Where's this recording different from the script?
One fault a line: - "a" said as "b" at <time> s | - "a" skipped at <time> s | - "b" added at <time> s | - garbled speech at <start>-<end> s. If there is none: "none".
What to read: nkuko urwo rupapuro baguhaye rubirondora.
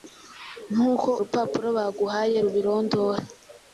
- "urwo" skipped at 1.1 s